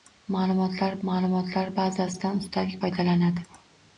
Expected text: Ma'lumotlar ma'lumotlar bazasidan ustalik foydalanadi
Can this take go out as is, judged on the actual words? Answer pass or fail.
pass